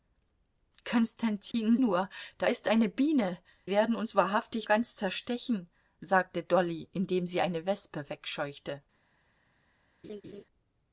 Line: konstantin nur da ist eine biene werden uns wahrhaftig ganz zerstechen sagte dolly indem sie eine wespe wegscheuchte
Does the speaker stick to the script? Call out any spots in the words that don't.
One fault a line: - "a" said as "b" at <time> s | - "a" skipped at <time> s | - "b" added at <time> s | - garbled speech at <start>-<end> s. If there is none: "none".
none